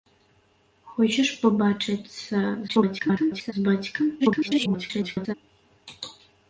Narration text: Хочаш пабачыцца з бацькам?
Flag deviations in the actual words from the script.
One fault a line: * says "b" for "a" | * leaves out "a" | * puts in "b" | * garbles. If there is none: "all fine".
* garbles
* garbles